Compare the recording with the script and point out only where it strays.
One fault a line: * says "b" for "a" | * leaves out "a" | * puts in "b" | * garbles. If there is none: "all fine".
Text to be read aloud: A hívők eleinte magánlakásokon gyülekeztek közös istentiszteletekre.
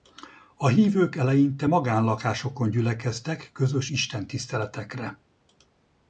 all fine